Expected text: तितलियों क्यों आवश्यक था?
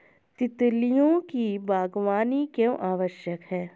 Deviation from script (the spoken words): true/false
true